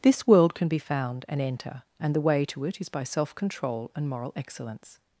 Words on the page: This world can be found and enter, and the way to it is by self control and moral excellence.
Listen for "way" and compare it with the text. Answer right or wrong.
right